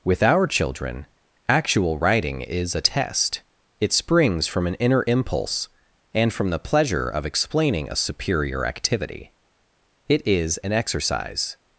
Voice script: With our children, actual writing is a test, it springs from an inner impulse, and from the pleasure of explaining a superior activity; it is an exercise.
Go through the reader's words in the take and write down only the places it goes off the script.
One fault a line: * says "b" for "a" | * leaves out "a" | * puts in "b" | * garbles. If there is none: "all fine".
all fine